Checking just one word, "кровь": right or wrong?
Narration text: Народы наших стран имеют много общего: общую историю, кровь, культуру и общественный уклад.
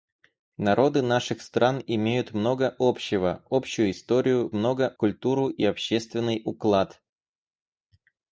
wrong